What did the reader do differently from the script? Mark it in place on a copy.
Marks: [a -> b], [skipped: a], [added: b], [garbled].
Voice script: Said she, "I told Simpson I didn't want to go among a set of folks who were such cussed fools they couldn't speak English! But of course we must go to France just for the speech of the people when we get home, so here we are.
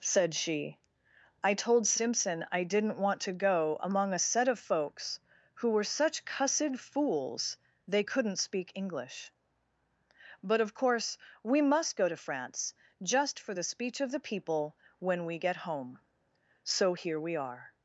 Said she, "I told Simpson I didn't want to go among a set of folks who were such cussed fools they couldn't speak English! But of course we must go to France just for the speech of the people when we get home, so here we are.